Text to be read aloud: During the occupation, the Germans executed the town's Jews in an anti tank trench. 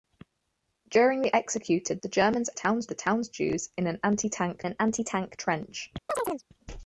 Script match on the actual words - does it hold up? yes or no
no